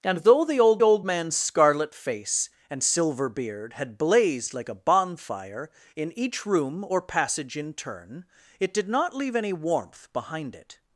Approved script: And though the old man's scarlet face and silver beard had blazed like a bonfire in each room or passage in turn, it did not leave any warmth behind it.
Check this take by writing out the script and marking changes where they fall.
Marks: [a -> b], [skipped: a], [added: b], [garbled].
And though the old [added: old] man's scarlet face and silver beard had blazed like a bonfire in each room or passage in turn, it did not leave any warmth behind it.